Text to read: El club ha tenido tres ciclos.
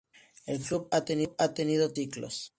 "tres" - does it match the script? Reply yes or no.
no